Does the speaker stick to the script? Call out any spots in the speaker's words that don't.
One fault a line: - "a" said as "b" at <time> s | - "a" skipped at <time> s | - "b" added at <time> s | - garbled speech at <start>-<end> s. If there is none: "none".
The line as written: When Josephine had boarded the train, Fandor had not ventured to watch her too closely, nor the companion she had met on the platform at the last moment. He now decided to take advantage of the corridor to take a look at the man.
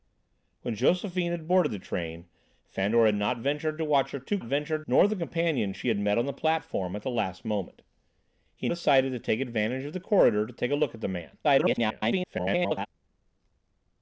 - "closely" said as "ventured" at 4.4 s
- "now" skipped at 8.7 s
- garbled speech at 11.4-12.9 s